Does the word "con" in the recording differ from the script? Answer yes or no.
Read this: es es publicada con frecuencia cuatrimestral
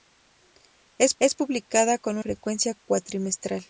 no